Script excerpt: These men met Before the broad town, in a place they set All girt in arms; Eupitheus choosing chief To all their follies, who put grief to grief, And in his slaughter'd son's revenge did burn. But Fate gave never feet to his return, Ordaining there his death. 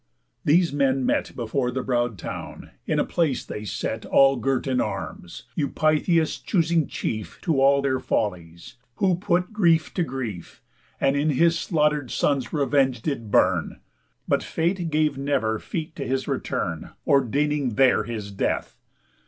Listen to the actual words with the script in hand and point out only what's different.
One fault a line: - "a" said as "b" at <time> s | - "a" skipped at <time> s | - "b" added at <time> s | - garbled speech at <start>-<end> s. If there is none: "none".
none